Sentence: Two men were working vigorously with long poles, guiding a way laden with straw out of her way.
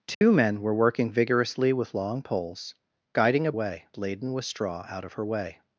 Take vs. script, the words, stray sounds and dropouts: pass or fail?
fail